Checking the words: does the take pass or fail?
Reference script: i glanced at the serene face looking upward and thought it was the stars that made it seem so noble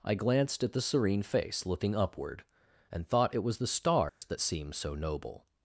fail